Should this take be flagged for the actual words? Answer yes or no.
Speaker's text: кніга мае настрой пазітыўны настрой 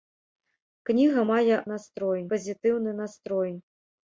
no